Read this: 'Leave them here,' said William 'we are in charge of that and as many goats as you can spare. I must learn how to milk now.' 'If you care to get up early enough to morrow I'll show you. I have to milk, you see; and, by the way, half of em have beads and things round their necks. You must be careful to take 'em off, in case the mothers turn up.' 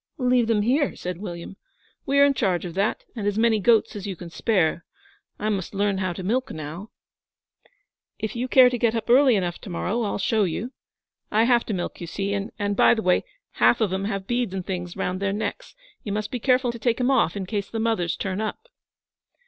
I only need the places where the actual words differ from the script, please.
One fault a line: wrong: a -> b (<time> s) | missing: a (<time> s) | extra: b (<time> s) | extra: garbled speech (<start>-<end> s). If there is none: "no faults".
no faults